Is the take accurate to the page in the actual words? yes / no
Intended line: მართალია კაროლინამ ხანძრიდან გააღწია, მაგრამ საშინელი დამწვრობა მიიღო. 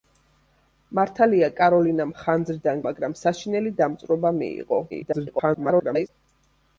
no